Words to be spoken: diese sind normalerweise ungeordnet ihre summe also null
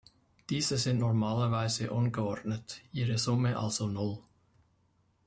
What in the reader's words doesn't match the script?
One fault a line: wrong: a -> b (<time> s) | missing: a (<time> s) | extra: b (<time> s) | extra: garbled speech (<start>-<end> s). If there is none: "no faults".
no faults